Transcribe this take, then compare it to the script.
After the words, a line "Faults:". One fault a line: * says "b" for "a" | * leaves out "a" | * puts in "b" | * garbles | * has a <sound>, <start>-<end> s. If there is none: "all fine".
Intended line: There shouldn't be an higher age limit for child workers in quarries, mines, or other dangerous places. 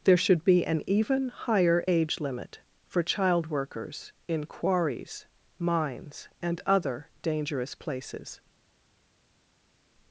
There should be an even higher age limit for child workers in quarries, mines, and other dangerous places.
Faults:
* says "should" for "shouldn't"
* puts in "even"
* says "and" for "or"